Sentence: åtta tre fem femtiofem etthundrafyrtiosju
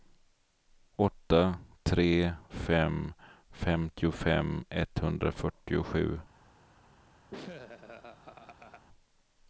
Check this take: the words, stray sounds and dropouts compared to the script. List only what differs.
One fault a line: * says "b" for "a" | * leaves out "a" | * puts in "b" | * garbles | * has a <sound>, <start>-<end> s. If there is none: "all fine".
* has a laugh, 7.3-8.9 s